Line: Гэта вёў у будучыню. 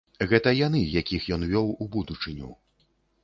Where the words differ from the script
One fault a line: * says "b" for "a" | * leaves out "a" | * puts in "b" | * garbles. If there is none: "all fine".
* puts in "яны якіх ён"